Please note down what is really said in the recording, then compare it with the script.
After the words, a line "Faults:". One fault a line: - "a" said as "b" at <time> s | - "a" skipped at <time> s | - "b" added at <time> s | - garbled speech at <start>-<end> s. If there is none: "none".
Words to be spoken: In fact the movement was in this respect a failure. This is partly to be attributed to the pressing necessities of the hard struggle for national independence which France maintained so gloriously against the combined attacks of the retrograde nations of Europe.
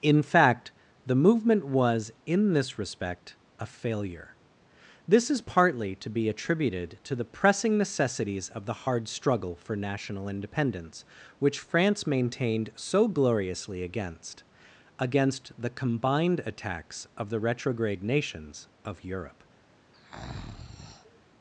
In fact the movement was in this respect a failure. This is partly to be attributed to the pressing necessities of the hard struggle for national independence which France maintained so gloriously against against the combined attacks of the retrograde nations of Europe.
Faults:
- "against" added at 15.0 s